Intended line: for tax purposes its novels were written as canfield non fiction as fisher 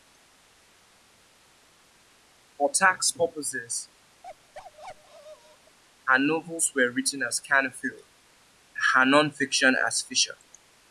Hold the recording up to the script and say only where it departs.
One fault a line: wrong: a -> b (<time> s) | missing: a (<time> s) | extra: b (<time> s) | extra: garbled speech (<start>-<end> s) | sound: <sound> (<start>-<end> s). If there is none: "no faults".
sound: bark (4.2-5.8 s)
wrong: its -> her (6.1 s)
extra: her (8.9 s)